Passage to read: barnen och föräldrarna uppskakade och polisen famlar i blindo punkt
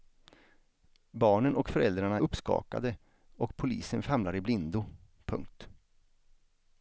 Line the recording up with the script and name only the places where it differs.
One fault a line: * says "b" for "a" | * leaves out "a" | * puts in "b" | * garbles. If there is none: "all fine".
all fine